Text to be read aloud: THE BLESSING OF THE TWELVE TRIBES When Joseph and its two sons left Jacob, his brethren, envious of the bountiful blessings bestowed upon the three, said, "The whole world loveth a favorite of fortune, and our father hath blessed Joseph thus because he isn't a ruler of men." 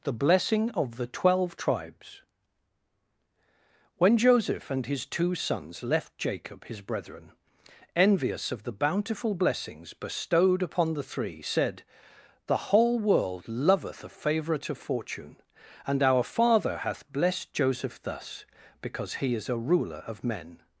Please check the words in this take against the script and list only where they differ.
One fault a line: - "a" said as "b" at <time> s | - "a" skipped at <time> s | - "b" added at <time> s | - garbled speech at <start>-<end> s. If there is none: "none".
- "its" said as "his" at 4.9 s
- "isn't" said as "is" at 19.4 s